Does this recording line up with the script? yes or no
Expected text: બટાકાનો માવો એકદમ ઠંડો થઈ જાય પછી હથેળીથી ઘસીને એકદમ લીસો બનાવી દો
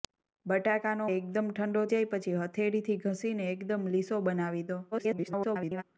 no